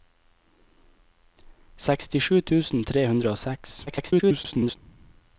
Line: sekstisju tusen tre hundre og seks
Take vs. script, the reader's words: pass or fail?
fail